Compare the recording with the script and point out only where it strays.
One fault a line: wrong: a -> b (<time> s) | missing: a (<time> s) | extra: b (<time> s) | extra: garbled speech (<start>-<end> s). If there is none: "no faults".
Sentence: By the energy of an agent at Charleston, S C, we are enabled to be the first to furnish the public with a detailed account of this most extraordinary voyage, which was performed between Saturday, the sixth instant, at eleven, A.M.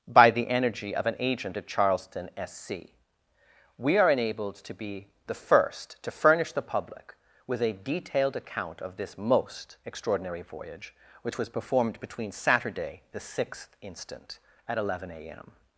no faults